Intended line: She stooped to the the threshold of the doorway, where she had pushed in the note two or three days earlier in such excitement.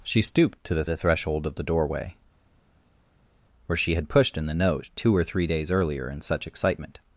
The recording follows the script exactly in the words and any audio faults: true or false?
true